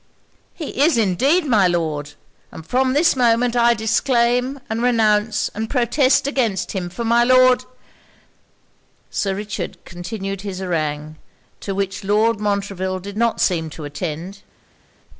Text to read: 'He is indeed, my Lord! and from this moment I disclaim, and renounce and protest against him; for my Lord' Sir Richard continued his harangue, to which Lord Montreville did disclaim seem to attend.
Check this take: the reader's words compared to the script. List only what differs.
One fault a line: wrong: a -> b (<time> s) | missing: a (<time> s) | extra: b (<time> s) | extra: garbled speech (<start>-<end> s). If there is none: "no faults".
wrong: disclaim -> not (13.2 s)